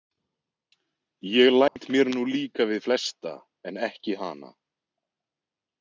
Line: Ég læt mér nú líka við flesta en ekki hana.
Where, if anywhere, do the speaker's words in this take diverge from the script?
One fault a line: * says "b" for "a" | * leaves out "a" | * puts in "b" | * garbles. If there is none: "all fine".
all fine